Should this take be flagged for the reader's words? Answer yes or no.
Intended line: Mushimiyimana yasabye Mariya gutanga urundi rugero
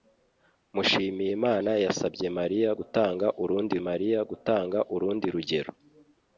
yes